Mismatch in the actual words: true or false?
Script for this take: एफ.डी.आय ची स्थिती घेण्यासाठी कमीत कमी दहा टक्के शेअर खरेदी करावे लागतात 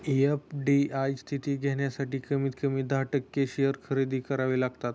true